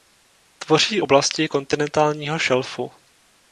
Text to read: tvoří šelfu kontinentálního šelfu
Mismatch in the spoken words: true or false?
true